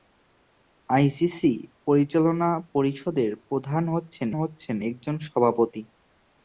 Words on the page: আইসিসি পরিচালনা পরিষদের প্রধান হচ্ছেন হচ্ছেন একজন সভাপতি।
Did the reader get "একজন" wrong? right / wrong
right